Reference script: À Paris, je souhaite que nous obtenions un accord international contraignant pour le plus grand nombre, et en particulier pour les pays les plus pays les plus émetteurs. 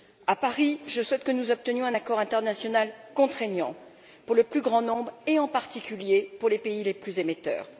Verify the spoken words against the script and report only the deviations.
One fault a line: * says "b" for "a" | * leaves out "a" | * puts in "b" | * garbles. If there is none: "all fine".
* leaves out "pays les plus"